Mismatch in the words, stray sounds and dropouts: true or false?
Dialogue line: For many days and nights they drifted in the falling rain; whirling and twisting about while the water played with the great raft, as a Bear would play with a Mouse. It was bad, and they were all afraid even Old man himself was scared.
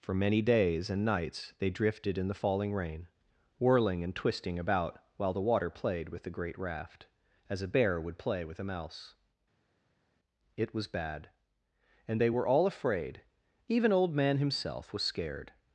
false